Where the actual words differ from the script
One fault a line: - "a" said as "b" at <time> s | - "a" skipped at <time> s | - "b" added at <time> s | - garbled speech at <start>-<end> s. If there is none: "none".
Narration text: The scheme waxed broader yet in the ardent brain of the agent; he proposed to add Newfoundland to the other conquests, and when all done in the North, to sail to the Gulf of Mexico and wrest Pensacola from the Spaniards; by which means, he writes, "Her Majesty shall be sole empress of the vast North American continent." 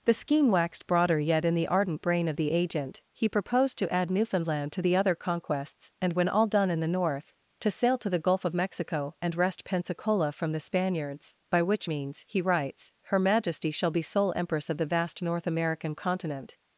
none